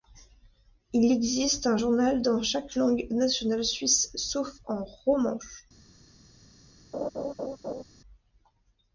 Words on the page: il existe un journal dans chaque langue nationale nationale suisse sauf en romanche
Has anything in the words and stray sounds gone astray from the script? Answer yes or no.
yes